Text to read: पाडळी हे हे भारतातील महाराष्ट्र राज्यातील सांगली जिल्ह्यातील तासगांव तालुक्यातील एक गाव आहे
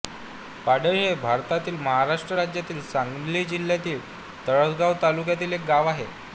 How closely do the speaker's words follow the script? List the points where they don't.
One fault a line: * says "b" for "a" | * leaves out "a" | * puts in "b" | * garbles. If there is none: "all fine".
* leaves out "हे"